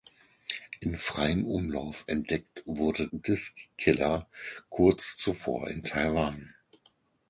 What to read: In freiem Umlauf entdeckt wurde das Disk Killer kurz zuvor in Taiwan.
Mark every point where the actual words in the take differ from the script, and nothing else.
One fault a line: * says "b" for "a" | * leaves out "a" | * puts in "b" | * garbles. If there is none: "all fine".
* leaves out "das"